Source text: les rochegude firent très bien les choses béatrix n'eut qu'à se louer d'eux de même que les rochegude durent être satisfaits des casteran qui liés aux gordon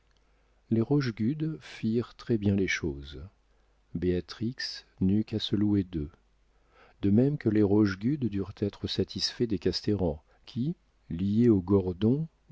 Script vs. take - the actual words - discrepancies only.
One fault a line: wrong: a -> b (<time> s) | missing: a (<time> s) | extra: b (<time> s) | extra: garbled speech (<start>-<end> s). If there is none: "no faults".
no faults